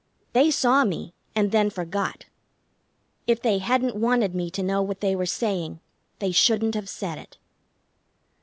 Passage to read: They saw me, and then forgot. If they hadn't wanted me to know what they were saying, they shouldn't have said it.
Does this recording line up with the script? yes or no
yes